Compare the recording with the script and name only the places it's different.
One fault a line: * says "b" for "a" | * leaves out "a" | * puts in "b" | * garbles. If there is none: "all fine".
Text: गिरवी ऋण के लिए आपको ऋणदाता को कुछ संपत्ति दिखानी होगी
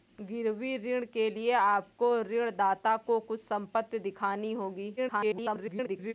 * garbles